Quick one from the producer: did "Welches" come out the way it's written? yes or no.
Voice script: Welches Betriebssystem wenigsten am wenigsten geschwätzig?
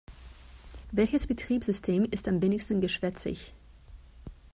yes